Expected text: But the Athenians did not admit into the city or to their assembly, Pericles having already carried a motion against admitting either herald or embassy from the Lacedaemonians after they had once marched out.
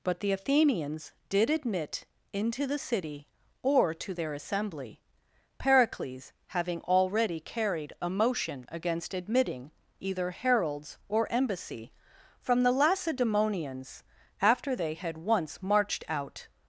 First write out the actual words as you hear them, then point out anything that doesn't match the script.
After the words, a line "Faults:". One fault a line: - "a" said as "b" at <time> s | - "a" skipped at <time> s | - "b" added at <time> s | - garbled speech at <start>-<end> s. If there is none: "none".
But the Athenians did admit into the city or to their assembly, Pericles having already carried a motion against admitting either heralds or embassy from the Lacedaemonians after they had once marched out.
Faults:
- "not" skipped at 1.5 s
- "herald" said as "heralds" at 10.3 s